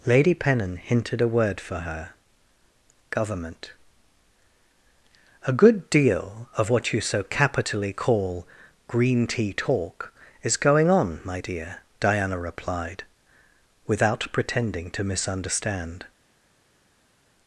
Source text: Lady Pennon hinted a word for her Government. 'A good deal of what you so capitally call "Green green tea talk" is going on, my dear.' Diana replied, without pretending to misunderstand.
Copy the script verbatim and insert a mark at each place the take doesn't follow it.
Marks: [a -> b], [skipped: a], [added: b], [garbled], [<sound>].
Lady Pennon hinted a word for her Government. 'A good deal of what you so capitally call "Green [skipped: green] tea talk" is going on, my dear.' Diana replied, without pretending to misunderstand.